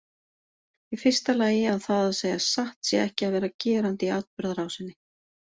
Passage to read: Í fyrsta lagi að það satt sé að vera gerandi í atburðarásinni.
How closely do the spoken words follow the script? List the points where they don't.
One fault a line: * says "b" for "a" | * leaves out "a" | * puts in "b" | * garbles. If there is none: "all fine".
* puts in "að segja"
* puts in "ekki"